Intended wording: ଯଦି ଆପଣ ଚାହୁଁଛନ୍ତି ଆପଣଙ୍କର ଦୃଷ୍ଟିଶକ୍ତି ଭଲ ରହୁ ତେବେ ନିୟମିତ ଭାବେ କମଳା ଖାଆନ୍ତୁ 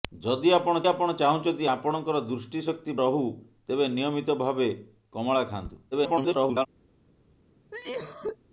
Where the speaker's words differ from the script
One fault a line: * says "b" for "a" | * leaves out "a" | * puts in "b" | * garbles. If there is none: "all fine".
* puts in "ଆପଣ"
* leaves out "ଭଲ"
* garbles